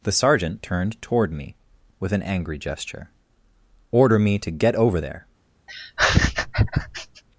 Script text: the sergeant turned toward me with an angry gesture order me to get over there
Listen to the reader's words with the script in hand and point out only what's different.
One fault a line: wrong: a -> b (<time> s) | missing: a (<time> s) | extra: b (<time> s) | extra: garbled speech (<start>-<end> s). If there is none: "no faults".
no faults